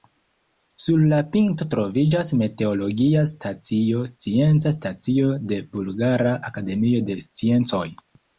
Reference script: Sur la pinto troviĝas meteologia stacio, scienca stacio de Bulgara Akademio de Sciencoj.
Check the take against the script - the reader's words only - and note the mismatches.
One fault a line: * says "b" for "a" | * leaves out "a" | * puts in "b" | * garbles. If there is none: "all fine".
all fine